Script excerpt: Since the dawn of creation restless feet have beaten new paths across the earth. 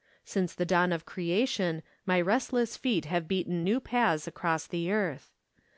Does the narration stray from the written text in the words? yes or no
yes